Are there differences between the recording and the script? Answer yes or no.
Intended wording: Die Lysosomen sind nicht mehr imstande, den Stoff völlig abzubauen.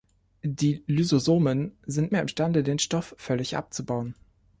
yes